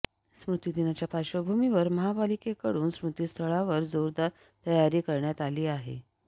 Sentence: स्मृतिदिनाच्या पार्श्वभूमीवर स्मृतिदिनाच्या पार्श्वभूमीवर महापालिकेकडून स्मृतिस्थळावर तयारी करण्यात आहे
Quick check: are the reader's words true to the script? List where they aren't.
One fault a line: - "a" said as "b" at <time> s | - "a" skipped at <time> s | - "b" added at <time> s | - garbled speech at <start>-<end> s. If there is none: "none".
- "स्मृतिदिनाच्या पार्श्वभूमीवर" skipped at 1.9 s
- "जोरदार" added at 3.9 s
- "आली" added at 5.4 s